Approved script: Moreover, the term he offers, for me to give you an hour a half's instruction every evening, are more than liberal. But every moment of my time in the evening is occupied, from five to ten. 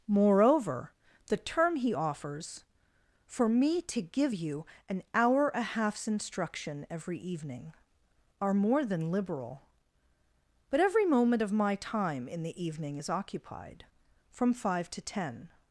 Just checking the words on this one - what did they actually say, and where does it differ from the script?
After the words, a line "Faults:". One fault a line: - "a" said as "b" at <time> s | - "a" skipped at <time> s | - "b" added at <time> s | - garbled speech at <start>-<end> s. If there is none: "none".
Moreover, the term he offers, for me to give you an hour a half's instruction every evening, are more than liberal. But every moment of my time in the evening is occupied, from five to ten.
Faults:
none